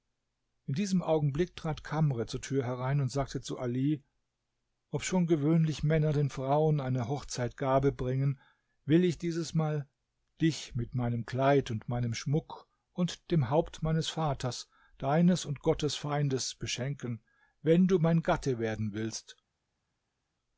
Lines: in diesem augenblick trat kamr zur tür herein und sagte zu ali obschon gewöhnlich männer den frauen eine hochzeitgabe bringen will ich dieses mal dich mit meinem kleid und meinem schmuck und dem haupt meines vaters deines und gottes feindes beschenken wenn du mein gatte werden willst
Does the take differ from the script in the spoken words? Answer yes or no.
no